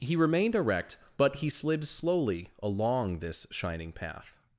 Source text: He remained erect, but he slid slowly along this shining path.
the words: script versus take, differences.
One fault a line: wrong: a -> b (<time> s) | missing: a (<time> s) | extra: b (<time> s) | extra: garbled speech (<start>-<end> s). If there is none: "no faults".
no faults